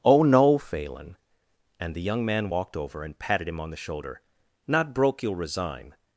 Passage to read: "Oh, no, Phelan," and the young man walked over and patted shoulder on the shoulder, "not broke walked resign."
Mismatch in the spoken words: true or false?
true